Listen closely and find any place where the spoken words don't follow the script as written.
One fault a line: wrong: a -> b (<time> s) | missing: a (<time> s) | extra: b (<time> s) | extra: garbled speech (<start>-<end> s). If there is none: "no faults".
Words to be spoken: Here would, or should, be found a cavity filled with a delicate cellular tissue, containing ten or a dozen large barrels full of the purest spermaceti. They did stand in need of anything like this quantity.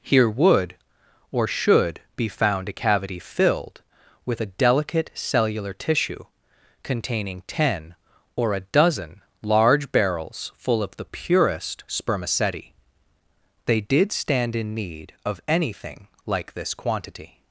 no faults